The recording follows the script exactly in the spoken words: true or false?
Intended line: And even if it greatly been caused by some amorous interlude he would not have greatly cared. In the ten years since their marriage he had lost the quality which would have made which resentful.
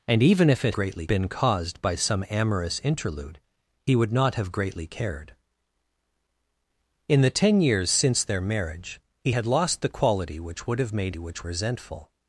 true